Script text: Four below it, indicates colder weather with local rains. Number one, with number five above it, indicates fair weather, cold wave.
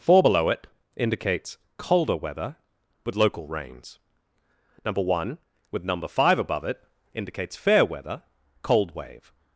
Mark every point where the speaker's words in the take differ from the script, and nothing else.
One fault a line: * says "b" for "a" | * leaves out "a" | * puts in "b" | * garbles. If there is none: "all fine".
all fine